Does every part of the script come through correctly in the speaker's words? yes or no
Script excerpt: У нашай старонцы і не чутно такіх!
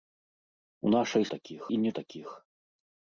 no